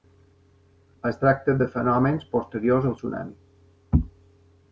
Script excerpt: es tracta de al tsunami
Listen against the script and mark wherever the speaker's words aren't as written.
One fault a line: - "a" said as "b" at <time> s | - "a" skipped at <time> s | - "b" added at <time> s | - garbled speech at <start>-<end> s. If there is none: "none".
- "fenòmens posteriors" added at 1.7 s